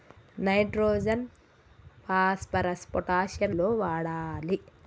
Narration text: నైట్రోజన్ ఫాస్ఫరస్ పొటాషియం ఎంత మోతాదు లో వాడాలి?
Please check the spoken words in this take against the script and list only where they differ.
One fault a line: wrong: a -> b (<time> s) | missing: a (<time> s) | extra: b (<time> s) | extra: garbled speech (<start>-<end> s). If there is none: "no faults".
missing: ఎంత మోతాదు (3.5 s)